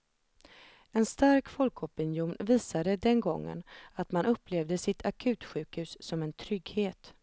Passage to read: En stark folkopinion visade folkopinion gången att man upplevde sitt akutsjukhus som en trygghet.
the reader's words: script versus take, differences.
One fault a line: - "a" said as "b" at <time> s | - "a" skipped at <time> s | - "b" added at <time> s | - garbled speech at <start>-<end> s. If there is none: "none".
- "folkopinion" said as "den" at 3.0 s